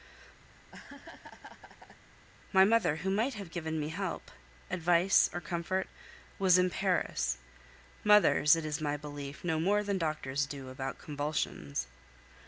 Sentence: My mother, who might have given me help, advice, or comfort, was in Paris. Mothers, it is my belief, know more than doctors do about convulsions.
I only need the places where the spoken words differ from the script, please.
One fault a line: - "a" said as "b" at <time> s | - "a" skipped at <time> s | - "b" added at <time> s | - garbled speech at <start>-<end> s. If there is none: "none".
none